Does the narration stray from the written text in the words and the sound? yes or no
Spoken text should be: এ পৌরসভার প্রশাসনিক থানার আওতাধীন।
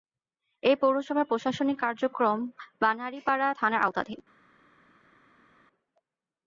yes